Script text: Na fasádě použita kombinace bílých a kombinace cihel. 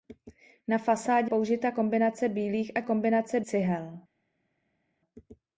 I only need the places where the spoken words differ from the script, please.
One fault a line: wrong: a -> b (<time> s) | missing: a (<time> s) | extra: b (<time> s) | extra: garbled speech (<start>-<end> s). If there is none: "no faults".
no faults